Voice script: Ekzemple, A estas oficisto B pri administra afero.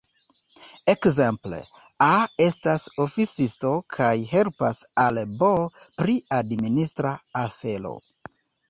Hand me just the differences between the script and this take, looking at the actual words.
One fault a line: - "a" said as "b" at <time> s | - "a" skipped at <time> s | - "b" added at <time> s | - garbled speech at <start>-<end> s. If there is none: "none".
- "kaj helpas al" added at 4.0 s